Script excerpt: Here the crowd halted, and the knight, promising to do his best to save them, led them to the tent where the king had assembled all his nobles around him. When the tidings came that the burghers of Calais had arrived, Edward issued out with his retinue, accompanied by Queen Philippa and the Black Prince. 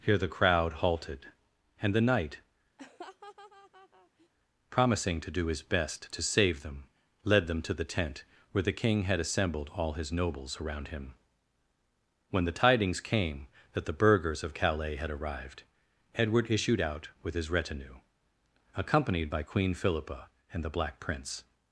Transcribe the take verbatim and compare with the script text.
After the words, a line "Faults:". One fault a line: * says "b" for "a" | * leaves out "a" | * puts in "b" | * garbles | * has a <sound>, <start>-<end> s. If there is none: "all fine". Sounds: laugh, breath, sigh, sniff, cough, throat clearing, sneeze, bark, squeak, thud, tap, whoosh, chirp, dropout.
Here the crowd halted, and the knight, promising to do his best to save them, led them to the tent where the king had assembled all his nobles around him. When the tidings came that the burghers of Calais had arrived, Edward issued out with his retinue, accompanied by Queen Philippa and the Black Prince.
Faults:
* has a laugh, 2.8-4.3 s